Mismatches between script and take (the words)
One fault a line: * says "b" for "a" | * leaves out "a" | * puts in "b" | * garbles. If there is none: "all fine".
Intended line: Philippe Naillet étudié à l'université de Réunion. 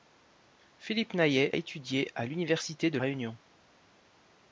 all fine